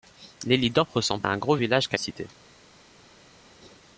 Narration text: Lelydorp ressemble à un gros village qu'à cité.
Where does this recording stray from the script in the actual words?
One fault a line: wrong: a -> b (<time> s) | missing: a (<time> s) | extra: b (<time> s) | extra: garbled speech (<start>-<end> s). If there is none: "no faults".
no faults